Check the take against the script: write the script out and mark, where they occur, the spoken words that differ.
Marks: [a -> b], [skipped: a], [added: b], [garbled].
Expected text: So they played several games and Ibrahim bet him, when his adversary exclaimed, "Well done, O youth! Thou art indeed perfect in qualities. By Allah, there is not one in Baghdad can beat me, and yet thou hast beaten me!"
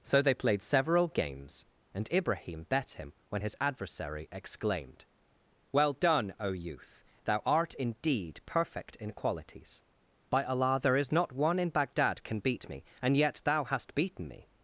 So they played several games and Ibrahim bet him, when his adversary exclaimed, "Well done, O youth! Thou art indeed perfect in qualities. By Allah, there is not one in Baghdad can beat me, and yet thou hast beaten me!"